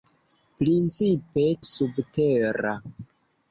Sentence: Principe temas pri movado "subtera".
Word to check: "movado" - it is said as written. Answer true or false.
false